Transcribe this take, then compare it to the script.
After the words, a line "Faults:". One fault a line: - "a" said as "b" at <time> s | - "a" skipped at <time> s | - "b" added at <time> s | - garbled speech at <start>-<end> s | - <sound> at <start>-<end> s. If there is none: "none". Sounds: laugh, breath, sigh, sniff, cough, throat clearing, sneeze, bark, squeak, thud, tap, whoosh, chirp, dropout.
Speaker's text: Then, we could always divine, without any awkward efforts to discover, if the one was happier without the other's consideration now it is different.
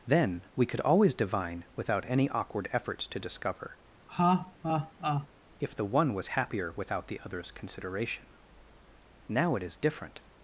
Then, we could always divine, without any awkward efforts to discover, if the one was happier without the other's consideration now it is different.
Faults:
- laugh at 4.1-5.3 s